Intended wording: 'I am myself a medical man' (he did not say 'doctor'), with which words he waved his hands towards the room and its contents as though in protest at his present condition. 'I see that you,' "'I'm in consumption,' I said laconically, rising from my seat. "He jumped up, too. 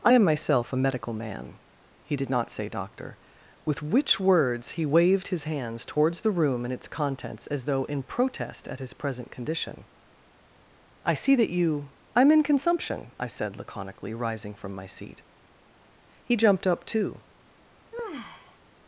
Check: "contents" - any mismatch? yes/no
no